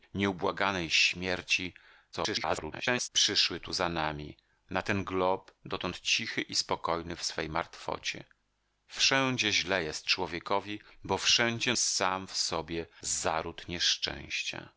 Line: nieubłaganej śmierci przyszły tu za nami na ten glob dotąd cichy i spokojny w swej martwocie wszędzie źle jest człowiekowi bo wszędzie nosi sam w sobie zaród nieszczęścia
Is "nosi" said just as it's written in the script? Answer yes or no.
no